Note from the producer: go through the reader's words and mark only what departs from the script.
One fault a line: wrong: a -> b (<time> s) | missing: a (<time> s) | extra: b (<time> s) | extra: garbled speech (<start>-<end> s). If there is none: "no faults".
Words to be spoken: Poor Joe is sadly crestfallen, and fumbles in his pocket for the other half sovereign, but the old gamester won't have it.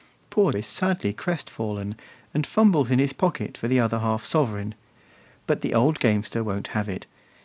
missing: Joe (0.5 s)